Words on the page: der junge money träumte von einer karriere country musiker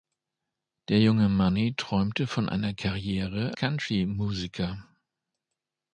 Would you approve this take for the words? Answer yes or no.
yes